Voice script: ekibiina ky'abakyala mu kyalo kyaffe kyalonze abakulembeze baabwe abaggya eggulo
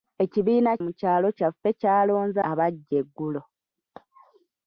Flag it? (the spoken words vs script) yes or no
yes